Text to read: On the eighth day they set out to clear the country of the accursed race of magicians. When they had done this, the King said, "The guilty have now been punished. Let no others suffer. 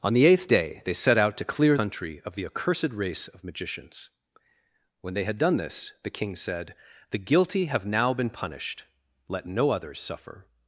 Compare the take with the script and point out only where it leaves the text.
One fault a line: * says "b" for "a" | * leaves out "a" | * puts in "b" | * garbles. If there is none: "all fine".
* leaves out "the"